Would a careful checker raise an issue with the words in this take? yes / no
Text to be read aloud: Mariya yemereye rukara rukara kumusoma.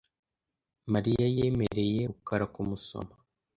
yes